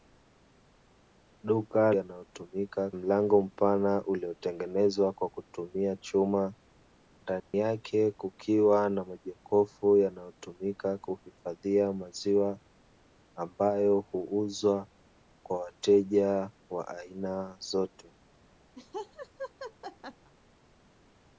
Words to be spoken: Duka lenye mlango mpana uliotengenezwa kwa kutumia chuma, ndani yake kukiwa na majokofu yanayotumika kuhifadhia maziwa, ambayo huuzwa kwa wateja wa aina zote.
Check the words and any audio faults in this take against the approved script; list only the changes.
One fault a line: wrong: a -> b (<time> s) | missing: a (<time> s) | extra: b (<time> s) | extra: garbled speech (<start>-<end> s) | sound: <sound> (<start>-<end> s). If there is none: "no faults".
wrong: lenye -> yanayotumika (1.9 s)
sound: dropout (7.4-7.5 s)
sound: laugh (18.8-20.3 s)